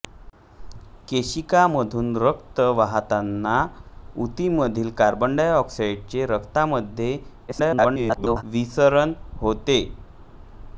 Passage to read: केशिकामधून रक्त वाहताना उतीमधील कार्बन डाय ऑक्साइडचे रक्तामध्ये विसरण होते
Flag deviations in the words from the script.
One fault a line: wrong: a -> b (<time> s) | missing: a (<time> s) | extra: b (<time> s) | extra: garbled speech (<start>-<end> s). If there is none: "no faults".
extra: garbled speech (7.5-8.4 s)